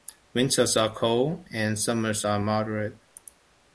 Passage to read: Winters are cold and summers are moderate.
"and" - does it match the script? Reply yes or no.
yes